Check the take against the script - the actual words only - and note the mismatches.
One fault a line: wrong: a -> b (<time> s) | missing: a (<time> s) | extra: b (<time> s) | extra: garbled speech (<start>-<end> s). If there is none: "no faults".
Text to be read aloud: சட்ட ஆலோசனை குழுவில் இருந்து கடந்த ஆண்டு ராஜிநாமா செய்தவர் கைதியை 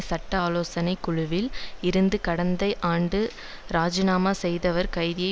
no faults